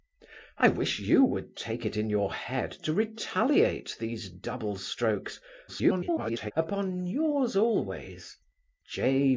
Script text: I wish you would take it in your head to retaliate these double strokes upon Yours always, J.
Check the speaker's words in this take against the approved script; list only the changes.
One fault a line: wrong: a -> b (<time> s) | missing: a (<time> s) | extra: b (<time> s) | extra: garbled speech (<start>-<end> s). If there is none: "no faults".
extra: garbled speech (5.7-6.5 s)